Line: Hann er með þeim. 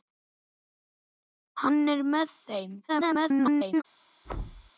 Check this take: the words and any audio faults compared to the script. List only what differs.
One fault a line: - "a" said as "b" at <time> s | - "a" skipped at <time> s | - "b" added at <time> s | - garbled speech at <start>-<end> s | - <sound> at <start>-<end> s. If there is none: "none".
- garbled speech at 2.9-3.8 s
- thud at 4.2-4.7 s